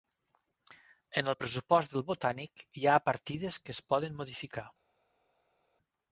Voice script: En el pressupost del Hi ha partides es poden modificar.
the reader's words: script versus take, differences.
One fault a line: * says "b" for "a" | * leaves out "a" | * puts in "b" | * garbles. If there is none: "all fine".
* puts in "Botànic"
* puts in "que"